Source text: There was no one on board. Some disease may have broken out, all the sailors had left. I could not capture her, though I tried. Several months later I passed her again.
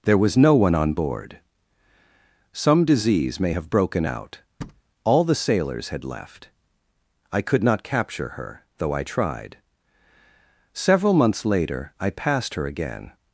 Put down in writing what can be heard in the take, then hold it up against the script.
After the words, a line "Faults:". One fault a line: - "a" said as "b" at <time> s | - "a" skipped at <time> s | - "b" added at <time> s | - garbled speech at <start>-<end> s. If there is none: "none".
There was no one on board. Some disease may have broken out, all the sailors had left. I could not capture her, though I tried. Several months later I passed her again.
Faults:
none